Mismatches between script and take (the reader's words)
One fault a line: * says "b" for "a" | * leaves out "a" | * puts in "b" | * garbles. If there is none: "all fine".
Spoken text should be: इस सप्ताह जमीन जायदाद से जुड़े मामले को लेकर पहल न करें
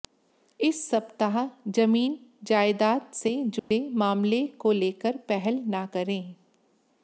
all fine